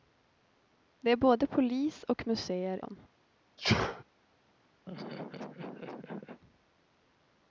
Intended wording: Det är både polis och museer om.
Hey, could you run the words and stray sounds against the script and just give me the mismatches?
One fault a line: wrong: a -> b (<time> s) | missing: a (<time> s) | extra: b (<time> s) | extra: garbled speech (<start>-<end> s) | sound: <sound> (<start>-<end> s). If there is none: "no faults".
sound: sneeze (3.6-4.0 s)
sound: laugh (4.9-6.4 s)